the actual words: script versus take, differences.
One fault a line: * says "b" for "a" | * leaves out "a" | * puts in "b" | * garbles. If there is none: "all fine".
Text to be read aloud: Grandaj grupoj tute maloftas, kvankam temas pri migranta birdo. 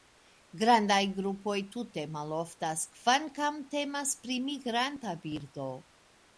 all fine